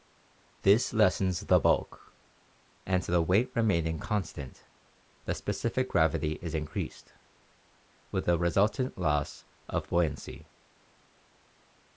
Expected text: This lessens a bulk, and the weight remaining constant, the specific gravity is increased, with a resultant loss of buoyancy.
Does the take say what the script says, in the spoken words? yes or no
no